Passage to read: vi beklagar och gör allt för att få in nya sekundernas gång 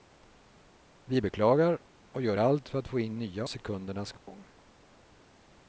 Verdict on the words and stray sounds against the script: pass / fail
fail